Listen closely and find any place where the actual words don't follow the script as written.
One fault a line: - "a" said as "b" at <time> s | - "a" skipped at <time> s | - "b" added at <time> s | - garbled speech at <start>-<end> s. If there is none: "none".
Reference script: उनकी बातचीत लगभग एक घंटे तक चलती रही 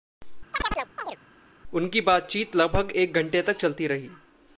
none